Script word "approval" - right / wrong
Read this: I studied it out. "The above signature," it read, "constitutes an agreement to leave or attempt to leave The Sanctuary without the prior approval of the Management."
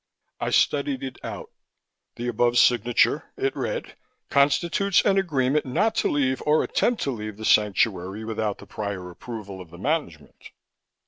right